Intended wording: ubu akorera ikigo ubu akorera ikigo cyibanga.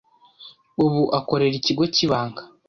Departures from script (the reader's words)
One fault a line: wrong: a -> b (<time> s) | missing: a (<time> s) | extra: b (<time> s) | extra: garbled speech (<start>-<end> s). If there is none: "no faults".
missing: ubu akorera ikigo (1.8 s)